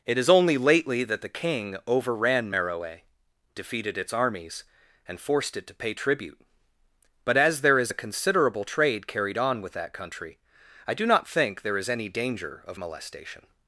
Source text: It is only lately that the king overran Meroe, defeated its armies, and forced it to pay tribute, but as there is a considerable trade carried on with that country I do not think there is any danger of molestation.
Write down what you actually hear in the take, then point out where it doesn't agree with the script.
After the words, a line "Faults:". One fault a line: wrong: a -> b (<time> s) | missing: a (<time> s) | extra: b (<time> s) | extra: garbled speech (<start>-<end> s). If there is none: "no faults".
It is only lately that the king overran Meroe, defeated its armies, and forced it to pay tribute, but as there is a considerable trade carried on with that country I do not think there is any danger of molestation.
Faults:
no faults